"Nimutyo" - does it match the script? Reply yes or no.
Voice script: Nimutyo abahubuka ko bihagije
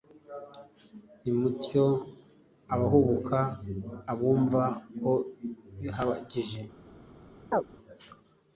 yes